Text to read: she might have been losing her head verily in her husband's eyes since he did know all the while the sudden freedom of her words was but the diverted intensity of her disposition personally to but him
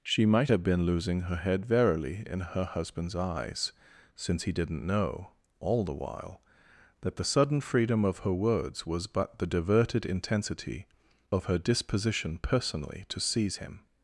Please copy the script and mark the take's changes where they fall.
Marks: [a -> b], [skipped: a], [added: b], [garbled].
she might have been losing her head verily in her husband's eyes since he [did -> didn't] know all the while [added: that] the sudden freedom of her words was but the diverted intensity of her disposition personally to [but -> seize] him